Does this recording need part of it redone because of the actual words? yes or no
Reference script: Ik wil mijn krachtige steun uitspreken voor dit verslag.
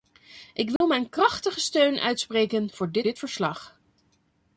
yes